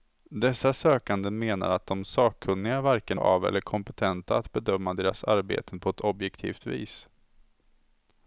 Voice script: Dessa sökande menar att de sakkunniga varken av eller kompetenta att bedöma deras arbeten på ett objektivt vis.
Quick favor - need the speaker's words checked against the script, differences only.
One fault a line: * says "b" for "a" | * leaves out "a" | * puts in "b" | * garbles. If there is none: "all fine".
all fine